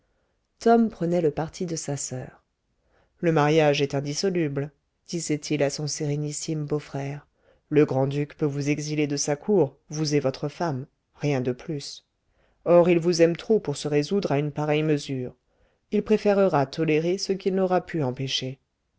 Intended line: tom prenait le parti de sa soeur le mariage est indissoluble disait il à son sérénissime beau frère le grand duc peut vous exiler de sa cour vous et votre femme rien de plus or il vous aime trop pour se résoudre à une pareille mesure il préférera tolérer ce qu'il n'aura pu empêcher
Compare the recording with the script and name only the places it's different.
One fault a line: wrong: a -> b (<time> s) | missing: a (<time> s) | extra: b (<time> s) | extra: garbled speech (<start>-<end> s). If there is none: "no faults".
no faults